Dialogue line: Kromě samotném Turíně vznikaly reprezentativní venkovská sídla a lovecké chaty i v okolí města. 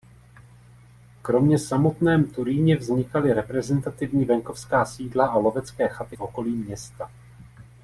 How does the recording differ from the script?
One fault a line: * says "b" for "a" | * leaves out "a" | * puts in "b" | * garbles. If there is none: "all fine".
* leaves out "i"